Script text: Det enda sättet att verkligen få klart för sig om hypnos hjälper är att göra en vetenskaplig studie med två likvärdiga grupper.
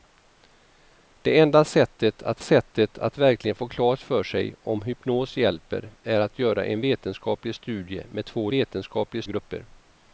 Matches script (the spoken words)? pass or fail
fail